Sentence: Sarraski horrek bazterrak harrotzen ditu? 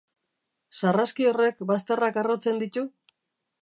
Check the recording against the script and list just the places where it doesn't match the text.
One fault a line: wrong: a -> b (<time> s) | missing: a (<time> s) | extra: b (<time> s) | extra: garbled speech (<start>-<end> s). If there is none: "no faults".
no faults